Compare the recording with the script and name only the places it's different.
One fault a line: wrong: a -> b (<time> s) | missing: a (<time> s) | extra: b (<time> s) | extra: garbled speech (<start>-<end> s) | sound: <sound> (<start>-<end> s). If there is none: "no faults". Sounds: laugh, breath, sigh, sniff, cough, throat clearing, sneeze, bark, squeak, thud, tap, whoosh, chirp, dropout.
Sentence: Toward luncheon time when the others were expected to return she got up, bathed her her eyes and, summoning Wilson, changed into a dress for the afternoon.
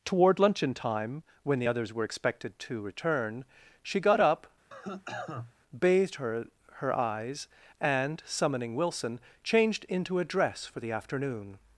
sound: cough (4.7-5.5 s)